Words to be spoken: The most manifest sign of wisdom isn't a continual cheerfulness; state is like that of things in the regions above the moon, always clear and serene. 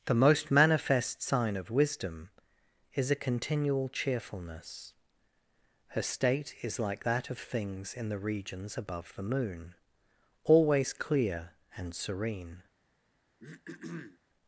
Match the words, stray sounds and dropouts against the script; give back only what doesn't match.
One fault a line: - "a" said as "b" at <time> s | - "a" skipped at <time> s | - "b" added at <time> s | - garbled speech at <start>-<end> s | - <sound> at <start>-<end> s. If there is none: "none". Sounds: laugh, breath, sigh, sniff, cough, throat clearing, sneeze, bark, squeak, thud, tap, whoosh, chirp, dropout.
- "isn't" said as "is" at 3.0 s
- "her" added at 5.9 s
- throat clearing at 13.4-14.2 s